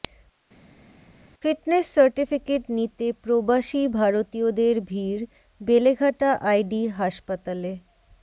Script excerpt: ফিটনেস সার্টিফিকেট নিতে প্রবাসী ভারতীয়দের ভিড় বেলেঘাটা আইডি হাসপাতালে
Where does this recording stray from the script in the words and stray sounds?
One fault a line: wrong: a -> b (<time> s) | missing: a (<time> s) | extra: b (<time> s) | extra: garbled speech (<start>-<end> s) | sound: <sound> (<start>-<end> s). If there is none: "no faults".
no faults